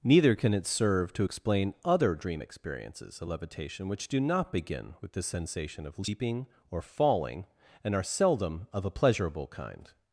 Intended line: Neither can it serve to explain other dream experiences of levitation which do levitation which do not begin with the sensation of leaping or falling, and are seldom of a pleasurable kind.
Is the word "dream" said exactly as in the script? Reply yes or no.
yes